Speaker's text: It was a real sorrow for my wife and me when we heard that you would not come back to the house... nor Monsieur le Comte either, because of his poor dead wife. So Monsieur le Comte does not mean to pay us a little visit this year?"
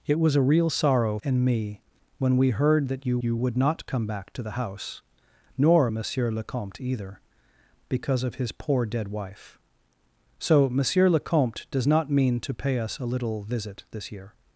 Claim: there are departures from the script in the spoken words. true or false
true